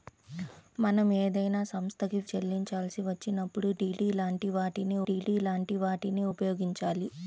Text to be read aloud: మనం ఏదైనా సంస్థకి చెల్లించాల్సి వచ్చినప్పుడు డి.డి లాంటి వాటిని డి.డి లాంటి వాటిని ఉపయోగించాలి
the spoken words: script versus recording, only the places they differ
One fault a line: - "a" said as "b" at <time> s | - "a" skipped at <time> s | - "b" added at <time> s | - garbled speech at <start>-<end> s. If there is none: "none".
none